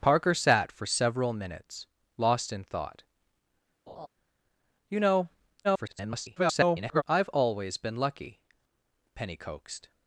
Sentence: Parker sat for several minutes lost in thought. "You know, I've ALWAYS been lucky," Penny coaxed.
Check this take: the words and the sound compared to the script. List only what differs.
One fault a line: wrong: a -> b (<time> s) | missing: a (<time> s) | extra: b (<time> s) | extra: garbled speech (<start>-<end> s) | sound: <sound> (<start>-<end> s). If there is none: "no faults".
sound: laugh (3.9-4.1 s)
extra: garbled speech (5.6-7.0 s)